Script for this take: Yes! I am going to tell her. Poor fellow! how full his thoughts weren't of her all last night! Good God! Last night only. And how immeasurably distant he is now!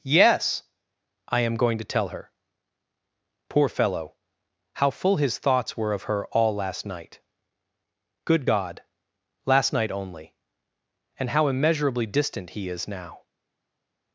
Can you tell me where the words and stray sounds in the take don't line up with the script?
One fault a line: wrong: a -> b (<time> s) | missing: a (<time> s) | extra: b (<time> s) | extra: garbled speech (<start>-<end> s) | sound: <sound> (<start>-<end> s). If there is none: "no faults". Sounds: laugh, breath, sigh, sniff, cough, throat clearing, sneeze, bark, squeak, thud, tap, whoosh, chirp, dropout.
wrong: weren't -> were (5.8 s)